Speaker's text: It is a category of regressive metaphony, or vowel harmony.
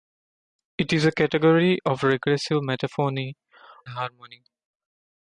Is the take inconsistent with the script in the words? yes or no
yes